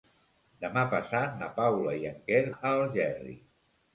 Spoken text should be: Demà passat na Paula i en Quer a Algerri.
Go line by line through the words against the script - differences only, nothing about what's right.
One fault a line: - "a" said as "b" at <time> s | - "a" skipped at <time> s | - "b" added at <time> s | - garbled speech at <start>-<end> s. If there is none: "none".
none